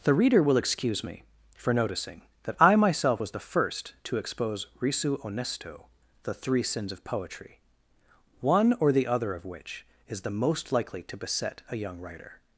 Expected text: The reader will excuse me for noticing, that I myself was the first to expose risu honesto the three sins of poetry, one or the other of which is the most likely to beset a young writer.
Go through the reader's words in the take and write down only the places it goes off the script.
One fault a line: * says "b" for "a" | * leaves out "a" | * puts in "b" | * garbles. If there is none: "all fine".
all fine